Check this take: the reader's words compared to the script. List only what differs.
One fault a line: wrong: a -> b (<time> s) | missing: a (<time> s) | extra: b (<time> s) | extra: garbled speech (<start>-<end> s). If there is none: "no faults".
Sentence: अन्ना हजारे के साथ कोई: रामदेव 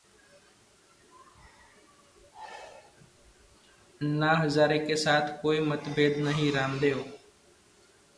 extra: मतभेद नहीं (5.6 s)